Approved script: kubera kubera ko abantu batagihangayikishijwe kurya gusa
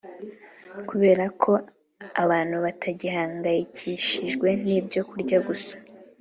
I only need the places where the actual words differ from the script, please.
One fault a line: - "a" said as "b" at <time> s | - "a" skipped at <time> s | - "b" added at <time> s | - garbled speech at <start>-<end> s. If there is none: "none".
- "kubera" skipped at 1.2 s
- "n'ibyo" added at 4.7 s